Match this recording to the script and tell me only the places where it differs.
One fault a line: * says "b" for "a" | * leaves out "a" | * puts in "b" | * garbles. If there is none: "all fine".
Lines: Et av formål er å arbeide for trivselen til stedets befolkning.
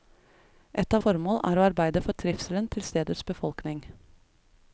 all fine